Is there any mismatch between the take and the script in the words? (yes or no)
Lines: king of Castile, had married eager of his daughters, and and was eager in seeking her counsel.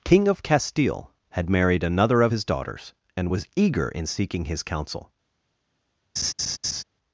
yes